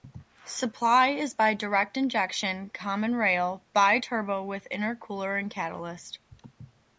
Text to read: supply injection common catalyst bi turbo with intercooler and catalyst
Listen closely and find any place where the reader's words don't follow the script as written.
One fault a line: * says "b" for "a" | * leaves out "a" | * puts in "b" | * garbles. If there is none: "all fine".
* puts in "is by direct"
* says "rail" for "catalyst"